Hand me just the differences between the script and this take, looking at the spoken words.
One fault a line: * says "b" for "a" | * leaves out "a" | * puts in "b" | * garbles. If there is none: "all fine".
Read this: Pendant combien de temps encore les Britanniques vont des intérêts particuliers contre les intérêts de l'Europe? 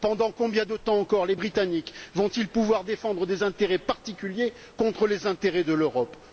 * puts in "ils pouvoir défendre"